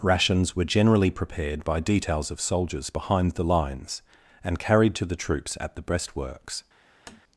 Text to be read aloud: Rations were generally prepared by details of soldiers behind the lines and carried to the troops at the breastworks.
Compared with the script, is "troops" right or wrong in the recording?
right